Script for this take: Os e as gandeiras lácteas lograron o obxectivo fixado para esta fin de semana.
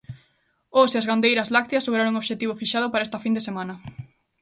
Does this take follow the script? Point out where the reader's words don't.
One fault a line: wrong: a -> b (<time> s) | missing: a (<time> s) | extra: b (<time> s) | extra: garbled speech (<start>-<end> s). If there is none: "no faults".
no faults